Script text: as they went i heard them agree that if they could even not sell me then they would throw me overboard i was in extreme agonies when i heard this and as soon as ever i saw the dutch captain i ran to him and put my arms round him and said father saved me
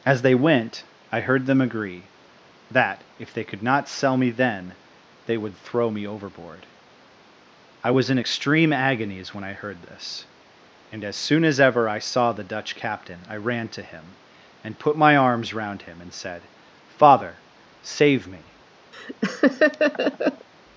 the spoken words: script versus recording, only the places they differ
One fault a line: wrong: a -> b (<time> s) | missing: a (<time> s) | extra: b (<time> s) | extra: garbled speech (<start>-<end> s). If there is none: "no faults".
missing: even (3.6 s)
wrong: saved -> save (17.8 s)